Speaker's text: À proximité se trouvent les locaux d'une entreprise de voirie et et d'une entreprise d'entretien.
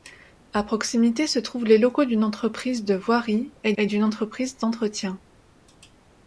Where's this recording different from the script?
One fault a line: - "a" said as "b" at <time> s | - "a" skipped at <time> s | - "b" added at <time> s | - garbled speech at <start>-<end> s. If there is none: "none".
none